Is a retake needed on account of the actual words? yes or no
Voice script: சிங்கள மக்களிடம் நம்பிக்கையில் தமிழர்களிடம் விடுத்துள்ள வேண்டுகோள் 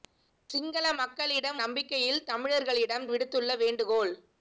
no